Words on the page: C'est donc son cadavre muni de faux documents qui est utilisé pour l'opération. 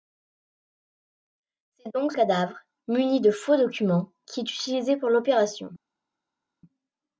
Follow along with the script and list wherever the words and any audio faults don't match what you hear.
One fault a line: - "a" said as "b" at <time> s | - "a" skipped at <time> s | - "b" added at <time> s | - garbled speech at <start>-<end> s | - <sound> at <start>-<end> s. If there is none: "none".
- "son" skipped at 2.1 s